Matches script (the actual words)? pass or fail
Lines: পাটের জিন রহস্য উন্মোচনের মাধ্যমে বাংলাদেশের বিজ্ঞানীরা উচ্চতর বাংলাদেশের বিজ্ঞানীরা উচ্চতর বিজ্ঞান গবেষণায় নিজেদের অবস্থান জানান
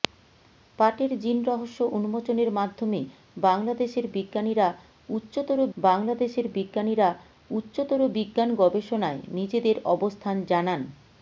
pass